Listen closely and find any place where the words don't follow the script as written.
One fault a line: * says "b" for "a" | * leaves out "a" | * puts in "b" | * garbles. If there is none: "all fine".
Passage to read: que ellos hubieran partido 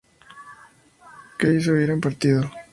all fine